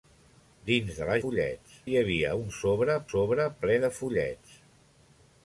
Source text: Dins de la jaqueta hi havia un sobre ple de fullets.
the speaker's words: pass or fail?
fail